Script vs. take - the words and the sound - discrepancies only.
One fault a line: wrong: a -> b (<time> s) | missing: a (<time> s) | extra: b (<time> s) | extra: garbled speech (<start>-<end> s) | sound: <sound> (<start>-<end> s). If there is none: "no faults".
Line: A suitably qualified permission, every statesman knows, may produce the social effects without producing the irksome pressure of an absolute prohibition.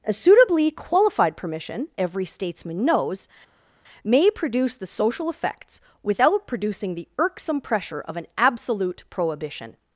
no faults